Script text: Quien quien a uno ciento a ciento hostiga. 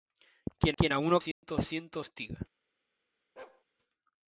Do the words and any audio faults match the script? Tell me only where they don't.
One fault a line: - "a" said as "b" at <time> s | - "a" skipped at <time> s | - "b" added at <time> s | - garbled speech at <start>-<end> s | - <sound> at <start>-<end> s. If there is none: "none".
- dropout at 1.3-1.4 s
- bark at 3.4-3.6 s